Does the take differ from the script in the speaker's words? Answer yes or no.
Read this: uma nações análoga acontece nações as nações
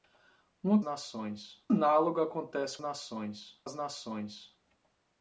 no